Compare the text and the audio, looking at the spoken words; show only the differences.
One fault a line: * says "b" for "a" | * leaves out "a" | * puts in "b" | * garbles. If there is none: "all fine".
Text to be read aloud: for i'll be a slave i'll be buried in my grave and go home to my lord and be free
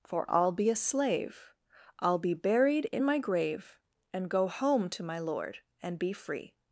all fine